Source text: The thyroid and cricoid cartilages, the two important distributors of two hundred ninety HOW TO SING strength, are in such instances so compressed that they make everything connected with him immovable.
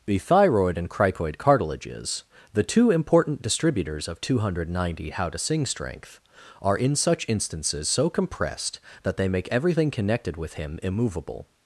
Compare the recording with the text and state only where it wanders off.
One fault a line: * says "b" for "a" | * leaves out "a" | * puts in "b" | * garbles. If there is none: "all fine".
all fine